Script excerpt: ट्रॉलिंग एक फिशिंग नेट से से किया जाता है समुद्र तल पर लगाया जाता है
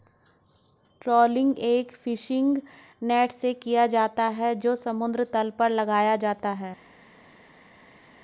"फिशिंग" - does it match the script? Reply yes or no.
yes